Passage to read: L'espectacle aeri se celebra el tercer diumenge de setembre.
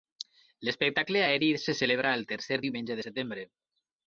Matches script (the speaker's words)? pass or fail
pass